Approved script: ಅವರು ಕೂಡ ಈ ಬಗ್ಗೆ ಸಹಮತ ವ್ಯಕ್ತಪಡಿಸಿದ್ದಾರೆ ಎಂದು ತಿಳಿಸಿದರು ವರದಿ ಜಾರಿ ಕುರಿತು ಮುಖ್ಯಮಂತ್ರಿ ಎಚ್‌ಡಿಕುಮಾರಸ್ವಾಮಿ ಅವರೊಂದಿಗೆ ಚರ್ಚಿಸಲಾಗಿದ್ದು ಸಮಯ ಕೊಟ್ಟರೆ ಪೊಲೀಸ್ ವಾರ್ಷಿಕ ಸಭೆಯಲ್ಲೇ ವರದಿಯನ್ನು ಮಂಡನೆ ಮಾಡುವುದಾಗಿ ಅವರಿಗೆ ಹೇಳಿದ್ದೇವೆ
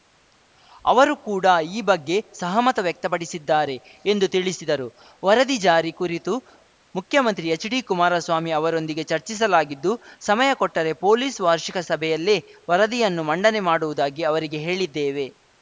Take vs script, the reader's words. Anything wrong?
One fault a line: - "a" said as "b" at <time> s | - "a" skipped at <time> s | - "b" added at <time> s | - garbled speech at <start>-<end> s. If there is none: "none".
none